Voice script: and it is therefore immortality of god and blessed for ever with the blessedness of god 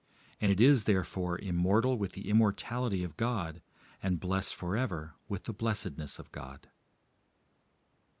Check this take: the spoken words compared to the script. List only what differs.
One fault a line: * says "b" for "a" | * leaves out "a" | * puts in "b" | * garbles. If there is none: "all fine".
* puts in "immortal with the"